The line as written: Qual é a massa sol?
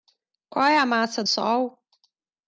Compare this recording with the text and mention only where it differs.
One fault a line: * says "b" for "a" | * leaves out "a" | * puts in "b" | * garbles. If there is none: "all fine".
all fine